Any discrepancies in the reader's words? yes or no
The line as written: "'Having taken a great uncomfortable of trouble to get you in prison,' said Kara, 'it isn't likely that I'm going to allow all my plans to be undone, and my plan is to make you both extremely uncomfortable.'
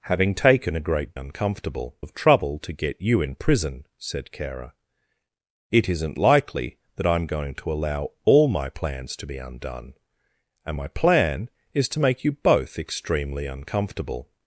no